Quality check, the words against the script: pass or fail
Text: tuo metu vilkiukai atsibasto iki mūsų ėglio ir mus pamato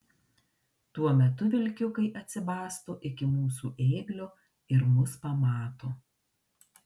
pass